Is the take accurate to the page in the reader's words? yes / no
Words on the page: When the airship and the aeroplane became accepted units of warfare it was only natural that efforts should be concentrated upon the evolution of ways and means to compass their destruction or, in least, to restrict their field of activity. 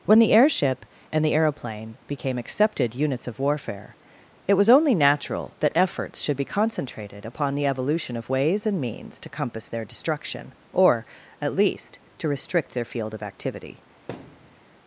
no